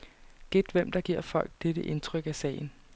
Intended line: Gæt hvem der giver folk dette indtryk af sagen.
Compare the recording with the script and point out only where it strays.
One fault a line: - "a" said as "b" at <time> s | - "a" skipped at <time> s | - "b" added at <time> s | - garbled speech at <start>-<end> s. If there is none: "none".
none